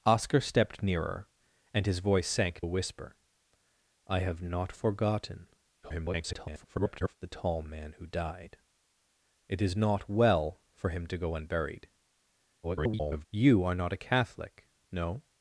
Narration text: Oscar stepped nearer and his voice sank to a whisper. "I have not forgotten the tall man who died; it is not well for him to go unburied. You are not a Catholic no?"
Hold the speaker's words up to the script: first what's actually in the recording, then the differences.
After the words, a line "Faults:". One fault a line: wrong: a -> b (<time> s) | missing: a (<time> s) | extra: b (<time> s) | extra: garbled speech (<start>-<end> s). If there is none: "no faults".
Oscar stepped nearer and his voice sank a whisper. "I have not forgotten [garbled] the tall man who died; it is not well for him to go unburied. [garbled] You are not a Catholic no?"
Faults:
missing: to (2.6 s)
extra: garbled speech (5.8-7.2 s)
extra: garbled speech (12.6-13.3 s)